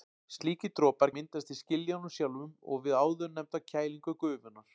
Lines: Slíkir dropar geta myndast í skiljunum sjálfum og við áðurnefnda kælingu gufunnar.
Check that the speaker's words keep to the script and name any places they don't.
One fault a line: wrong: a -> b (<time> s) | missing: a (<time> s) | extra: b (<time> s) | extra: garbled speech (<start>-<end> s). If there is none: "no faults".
missing: geta (1.1 s)